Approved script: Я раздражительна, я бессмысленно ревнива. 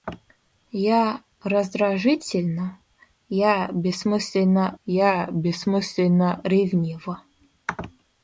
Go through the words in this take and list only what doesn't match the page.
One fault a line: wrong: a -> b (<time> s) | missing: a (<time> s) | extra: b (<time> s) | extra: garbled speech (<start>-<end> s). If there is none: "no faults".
extra: я бессмысленно (4.9 s)